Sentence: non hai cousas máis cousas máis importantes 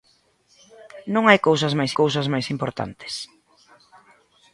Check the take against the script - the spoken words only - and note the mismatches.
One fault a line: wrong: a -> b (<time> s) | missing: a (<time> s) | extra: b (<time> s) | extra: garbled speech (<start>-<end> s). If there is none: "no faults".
no faults